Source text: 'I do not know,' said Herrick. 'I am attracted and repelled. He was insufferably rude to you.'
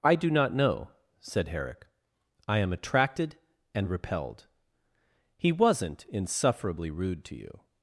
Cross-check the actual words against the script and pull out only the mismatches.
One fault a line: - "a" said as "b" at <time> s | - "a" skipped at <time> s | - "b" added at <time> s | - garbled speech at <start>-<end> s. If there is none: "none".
- "was" said as "wasn't" at 5.5 s